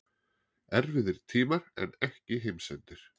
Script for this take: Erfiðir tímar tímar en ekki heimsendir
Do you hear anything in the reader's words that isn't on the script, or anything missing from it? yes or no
yes